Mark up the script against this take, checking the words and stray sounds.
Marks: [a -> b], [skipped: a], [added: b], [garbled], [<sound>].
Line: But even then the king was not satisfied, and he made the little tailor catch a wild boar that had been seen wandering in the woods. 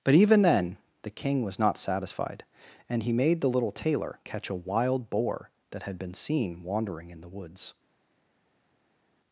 But even then the king was not satisfied, and he made the little tailor catch a wild boar that had been seen wandering in the woods.